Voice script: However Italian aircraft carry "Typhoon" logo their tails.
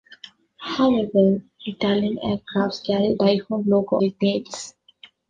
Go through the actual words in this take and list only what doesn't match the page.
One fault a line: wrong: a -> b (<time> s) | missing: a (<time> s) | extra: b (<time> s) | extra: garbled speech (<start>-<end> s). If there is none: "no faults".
no faults